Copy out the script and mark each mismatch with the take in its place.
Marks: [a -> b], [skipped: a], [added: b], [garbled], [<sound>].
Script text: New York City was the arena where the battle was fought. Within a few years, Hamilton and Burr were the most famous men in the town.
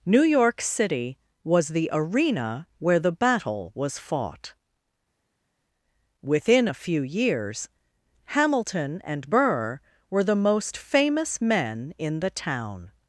New York City was the arena where the battle was fought. Within a few years, Hamilton and Burr were the most famous men in the town.